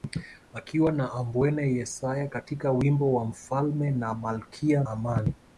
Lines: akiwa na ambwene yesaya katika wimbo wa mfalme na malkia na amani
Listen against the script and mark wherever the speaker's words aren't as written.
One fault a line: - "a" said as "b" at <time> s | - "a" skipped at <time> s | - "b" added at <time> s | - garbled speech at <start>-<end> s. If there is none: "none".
- "na" skipped at 4.8 s